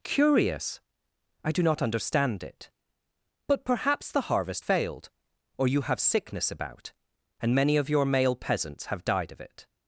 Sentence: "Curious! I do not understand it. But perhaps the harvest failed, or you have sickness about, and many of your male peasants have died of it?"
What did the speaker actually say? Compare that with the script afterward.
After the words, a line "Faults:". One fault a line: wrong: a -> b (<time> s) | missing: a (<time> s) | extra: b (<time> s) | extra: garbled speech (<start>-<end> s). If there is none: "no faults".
"Curious! I do not understand it. But perhaps the harvest failed, or you have sickness about, and many of your male peasants have died of it?"
Faults:
no faults